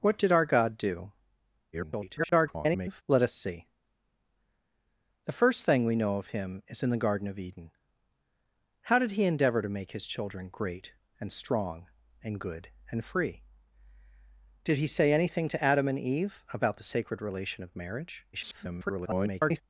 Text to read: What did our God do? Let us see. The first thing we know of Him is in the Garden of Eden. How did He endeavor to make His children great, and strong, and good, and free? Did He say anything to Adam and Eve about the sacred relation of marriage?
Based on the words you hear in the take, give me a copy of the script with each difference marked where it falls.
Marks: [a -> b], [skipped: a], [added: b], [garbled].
What did our God do? [garbled] Let us see. The first thing we know of Him is in the Garden of Eden. How did He endeavor to make His children great, and strong, and good, and free? Did He say anything to Adam and Eve about the sacred relation of marriage? [garbled]